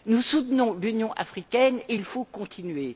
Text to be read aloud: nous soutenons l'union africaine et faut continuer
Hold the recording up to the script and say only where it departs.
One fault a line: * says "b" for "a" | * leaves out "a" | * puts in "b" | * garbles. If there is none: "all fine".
* puts in "il"